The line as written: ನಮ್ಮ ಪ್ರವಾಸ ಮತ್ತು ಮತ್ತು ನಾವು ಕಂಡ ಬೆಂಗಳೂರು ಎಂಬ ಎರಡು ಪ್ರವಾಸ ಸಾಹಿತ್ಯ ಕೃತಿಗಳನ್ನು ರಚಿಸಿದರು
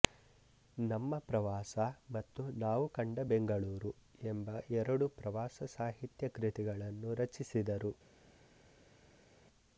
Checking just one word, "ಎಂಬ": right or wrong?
right